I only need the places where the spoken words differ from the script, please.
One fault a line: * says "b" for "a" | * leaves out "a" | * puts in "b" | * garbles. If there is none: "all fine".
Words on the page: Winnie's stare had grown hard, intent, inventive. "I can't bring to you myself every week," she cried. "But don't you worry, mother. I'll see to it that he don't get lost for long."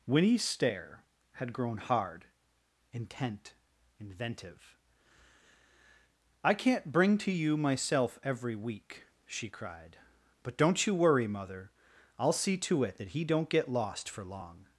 all fine